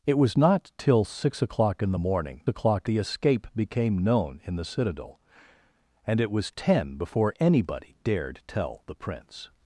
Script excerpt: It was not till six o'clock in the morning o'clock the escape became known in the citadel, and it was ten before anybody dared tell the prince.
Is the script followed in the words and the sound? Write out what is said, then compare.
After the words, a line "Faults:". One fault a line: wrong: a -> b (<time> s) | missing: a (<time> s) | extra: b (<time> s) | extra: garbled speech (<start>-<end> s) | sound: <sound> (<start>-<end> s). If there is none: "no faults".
It was not till six o'clock in the morning o'clock the escape became known in the citadel, and it was ten before anybody dared tell the prince.
Faults:
no faults